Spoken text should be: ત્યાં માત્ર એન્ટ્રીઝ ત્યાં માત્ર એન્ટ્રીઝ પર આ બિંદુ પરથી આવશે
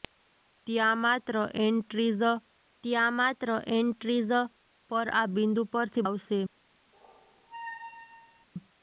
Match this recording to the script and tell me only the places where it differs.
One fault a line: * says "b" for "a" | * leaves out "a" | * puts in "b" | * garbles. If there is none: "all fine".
all fine